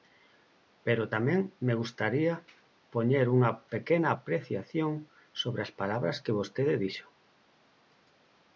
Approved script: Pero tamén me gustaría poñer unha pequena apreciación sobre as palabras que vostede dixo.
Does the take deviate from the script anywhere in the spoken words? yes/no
no